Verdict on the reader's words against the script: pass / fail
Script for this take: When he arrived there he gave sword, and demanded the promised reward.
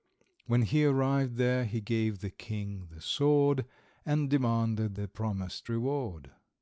fail